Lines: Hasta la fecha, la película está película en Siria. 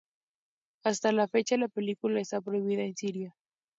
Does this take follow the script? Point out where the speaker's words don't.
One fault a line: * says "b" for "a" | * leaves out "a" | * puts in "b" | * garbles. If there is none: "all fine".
* says "prohibida" for "película"